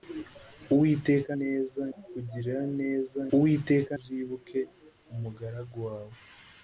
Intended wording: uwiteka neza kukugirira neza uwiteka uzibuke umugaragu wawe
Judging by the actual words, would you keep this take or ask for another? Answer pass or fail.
pass